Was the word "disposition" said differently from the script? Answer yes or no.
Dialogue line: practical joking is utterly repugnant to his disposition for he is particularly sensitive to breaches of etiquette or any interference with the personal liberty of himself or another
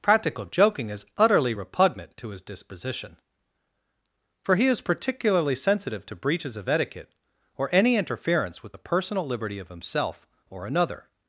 no